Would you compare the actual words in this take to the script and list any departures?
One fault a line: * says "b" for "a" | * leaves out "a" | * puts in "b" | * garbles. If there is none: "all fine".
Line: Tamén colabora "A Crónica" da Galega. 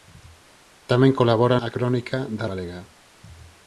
all fine